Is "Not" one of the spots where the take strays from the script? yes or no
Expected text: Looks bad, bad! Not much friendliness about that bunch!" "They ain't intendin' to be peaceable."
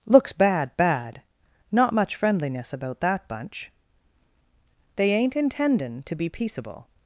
no